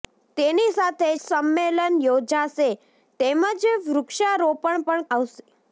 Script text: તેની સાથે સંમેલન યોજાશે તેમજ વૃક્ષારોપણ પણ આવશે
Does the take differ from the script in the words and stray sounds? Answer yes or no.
no